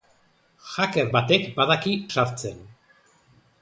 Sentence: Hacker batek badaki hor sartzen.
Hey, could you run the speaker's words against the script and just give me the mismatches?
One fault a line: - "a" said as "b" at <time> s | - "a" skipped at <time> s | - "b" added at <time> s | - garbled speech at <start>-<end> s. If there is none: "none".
- "hor" skipped at 1.9 s